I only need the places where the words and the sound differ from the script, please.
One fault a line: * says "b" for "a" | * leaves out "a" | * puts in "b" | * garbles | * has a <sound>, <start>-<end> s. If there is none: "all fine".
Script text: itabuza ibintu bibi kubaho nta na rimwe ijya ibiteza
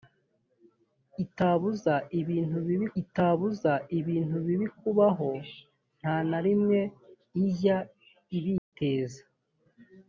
* puts in "itabuza ibintu bibi"
* has a dropout, 8.6-8.7 s